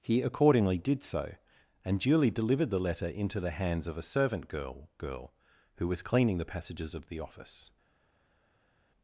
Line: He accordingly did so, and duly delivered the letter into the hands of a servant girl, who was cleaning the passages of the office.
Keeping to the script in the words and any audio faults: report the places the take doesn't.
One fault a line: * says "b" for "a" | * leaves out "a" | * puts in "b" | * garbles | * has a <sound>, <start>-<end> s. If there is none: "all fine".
* puts in "girl"